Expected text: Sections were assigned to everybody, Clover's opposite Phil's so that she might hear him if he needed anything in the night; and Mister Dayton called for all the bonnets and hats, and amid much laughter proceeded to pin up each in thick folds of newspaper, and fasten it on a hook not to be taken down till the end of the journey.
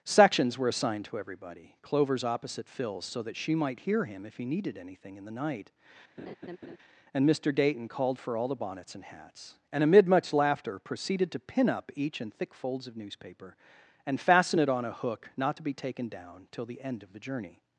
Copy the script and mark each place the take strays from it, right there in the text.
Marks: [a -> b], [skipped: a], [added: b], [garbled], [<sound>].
Sections were assigned to everybody, Clover's opposite Phil's so that she might hear him if he needed anything in the night; [laugh] and Mister Dayton called for all the bonnets and hats, and amid much laughter proceeded to pin up each in thick folds of newspaper, and fasten it on a hook not to be taken down till the end of the journey.